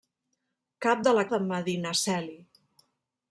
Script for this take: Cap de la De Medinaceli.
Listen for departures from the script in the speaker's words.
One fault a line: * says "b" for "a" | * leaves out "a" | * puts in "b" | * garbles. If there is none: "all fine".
all fine